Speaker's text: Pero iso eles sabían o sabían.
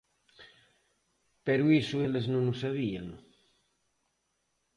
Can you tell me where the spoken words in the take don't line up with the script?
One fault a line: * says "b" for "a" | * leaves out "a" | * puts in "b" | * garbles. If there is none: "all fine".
* says "non" for "sabían"